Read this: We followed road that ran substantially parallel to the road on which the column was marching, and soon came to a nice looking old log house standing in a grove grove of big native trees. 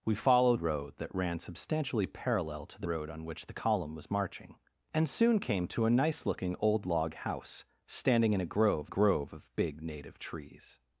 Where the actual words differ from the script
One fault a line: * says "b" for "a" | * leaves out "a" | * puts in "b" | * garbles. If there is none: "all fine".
all fine